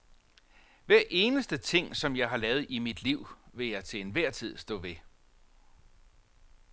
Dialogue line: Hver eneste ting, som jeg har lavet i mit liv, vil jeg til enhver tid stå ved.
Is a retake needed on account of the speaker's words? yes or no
no